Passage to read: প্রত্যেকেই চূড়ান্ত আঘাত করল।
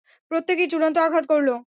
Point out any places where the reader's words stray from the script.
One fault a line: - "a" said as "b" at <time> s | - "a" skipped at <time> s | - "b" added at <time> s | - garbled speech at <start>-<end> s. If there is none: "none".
none